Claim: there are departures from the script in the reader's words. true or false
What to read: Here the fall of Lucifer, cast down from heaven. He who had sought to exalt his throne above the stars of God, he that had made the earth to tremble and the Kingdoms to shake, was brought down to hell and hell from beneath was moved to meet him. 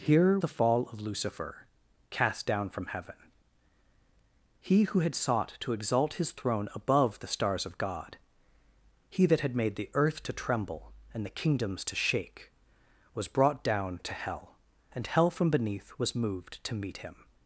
false